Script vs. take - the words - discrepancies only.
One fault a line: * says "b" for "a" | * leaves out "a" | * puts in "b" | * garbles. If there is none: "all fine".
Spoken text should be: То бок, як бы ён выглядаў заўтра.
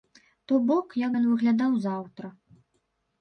* leaves out "бы"